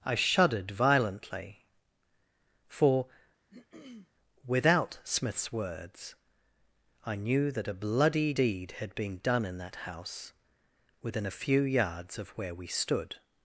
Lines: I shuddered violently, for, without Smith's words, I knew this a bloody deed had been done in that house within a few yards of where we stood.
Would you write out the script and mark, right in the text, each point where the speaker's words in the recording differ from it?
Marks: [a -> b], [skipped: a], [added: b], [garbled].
I shuddered violently, for, without Smith's words, I knew [this -> that] a bloody deed had been done in that house within a few yards of where we stood.